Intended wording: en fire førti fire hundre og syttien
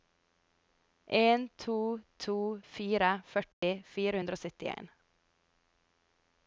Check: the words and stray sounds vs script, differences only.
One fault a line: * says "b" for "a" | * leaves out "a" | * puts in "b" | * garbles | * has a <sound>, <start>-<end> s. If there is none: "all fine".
* puts in "to to"
* has a dropout, 3.5-3.6 s